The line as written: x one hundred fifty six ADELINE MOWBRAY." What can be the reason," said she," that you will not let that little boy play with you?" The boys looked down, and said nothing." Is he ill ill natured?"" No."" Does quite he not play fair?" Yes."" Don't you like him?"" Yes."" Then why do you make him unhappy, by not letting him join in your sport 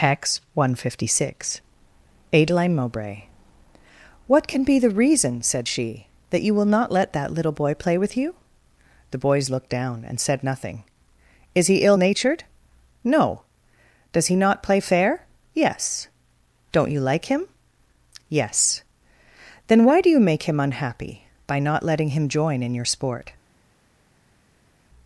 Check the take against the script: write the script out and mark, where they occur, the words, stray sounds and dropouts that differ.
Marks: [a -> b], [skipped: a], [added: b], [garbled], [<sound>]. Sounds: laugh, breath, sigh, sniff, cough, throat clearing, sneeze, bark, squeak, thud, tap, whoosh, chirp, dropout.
x one hundred fifty six ADELINE MOWBRAY." What can be the reason," said she," that you will not let that little boy play with you?" The boys looked down, and said nothing." Is he ill [skipped: ill] natured?"" No."" Does [skipped: quite] he not play fair?" Yes."" Don't you like him?"" Yes."" Then why do you make him unhappy, by not letting him join in your sport